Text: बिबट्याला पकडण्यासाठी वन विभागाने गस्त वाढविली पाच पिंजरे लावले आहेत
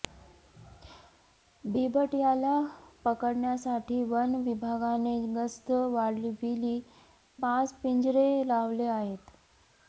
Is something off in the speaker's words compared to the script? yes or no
no